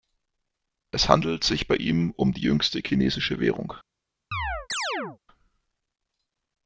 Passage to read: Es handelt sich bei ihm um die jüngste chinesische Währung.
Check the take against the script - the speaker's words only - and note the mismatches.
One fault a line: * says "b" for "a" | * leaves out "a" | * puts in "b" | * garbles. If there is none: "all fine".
all fine